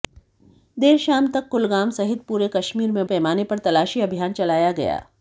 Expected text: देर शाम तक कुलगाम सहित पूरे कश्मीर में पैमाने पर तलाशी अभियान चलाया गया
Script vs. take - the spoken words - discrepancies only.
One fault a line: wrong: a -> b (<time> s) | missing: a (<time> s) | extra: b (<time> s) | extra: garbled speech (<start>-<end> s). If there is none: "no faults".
no faults